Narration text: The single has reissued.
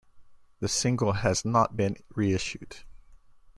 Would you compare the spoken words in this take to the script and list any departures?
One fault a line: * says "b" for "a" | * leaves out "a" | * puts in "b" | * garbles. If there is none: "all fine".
* puts in "not been"